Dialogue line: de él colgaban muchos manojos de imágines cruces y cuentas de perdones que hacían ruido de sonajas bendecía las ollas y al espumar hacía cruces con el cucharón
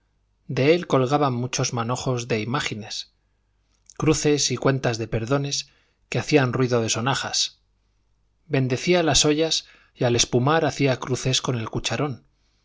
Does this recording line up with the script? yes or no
yes